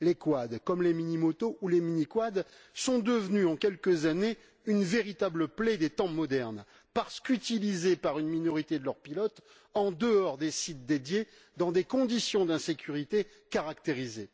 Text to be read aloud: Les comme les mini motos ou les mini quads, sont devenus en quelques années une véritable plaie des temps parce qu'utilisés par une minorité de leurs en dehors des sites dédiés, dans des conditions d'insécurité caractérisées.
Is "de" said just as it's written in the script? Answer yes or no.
yes